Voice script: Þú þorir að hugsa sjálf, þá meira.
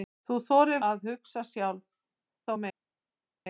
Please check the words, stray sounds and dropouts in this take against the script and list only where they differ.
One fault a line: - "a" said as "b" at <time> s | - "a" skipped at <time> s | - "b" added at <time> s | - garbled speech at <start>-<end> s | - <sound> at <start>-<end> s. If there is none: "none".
none